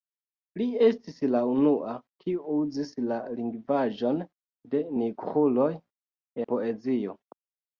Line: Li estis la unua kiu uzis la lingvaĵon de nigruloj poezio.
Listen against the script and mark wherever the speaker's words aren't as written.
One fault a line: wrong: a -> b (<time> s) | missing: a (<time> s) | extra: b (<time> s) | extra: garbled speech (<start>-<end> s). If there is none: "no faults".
no faults